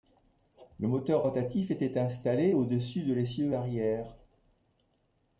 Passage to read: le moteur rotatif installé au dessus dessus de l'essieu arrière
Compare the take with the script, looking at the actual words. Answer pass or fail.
fail